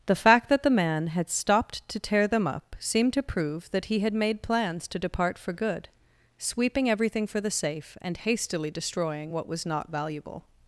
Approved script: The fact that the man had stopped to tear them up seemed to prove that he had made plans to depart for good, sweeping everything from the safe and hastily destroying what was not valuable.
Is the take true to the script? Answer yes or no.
no